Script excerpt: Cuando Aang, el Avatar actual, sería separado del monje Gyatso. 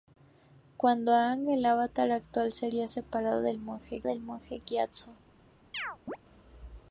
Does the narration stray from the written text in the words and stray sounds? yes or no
yes